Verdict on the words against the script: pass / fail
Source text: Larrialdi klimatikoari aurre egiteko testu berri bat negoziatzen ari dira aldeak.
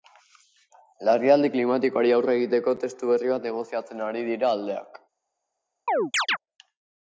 pass